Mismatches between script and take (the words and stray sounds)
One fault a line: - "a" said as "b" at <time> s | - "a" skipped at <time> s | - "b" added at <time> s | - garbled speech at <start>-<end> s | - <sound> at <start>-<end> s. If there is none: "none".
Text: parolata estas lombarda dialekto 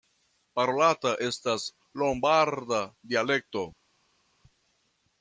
none